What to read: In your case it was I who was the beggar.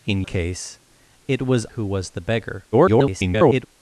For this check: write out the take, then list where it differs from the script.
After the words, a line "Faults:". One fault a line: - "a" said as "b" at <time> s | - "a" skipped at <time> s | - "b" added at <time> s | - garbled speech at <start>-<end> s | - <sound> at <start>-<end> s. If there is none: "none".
In case it was who was the beggar. [garbled]
Faults:
- "your" skipped at 0.2 s
- "I" skipped at 1.6 s
- garbled speech at 2.7-3.7 s